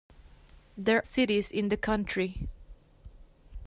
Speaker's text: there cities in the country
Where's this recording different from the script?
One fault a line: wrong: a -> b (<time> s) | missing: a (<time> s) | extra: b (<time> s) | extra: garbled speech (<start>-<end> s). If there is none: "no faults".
no faults